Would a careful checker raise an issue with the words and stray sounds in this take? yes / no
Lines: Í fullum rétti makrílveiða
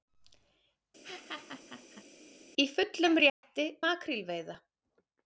yes